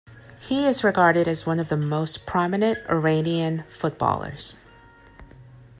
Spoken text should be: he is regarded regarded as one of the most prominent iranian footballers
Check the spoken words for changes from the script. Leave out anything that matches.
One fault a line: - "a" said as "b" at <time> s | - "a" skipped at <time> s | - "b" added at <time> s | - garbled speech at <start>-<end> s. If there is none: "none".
- "regarded" skipped at 1.3 s